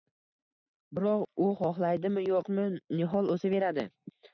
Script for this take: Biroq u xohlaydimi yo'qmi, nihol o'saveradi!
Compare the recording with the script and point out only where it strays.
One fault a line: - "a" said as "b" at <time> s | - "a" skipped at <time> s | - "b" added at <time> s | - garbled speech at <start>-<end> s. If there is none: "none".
none